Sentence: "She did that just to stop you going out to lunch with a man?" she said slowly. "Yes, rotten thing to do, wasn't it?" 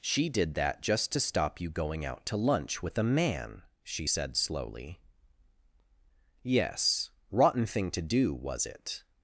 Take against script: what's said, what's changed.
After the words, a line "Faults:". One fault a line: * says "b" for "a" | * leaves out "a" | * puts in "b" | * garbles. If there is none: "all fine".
"She did that just to stop you going out to lunch with a man?" she said slowly. "Yes, rotten thing to do, was it?"
Faults:
* says "was" for "wasn't"